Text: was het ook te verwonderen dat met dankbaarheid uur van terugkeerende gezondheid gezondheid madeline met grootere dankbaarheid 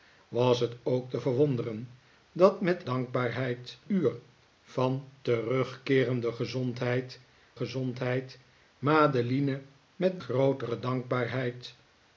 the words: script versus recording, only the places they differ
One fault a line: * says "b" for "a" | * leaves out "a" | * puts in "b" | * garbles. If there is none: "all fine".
all fine